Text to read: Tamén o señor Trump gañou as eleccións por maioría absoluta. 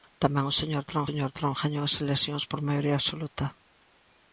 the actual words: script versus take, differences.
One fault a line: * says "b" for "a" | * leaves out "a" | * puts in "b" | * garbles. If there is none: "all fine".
* puts in "señor Trump"